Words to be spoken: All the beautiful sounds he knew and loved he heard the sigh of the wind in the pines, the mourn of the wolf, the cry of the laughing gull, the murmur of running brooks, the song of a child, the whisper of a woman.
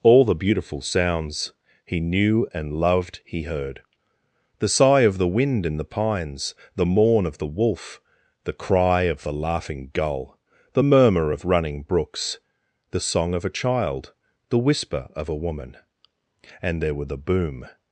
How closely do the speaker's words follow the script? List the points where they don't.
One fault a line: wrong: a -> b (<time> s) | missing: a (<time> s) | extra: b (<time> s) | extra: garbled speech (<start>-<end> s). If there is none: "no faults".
extra: And there were the boom (16.6 s)